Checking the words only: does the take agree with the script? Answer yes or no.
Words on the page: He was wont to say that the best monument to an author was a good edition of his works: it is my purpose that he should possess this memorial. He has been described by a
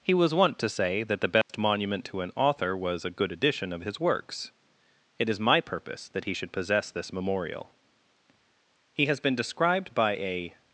yes